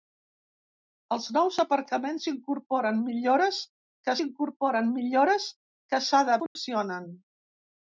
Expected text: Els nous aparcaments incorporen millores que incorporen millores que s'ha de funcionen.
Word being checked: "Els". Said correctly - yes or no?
yes